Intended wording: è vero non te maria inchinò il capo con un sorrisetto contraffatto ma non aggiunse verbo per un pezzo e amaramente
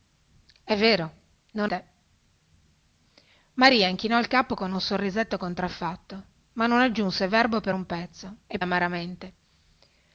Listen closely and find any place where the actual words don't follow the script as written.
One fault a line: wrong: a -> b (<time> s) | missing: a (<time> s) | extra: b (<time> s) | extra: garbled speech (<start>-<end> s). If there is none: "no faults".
no faults